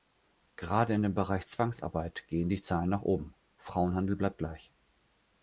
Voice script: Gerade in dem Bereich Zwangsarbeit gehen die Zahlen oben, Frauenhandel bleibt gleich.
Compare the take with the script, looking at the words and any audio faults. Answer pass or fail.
fail